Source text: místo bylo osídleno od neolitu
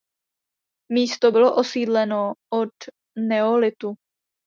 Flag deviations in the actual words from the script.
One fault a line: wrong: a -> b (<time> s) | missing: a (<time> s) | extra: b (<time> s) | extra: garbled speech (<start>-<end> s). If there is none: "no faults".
no faults